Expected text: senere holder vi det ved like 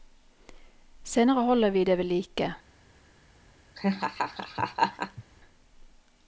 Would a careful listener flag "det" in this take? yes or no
no